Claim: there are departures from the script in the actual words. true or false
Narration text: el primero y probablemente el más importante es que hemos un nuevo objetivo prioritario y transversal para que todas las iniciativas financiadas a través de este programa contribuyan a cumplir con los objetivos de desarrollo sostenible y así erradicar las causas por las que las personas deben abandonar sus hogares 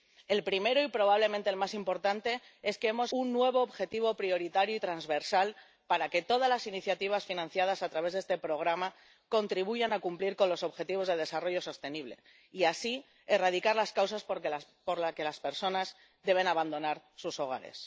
false